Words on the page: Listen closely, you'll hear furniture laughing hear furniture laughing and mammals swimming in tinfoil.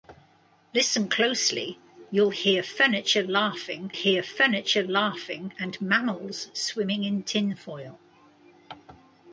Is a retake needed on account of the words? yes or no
no